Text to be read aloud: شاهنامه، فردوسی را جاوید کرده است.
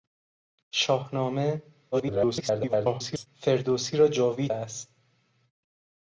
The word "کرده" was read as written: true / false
false